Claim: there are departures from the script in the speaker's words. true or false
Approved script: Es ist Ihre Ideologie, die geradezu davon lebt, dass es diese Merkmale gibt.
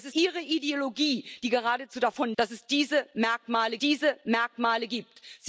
true